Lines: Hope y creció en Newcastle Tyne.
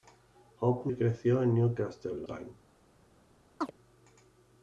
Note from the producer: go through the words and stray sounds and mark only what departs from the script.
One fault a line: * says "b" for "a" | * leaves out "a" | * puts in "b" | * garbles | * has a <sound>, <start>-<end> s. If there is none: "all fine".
* has a chirp, 3.6-3.7 s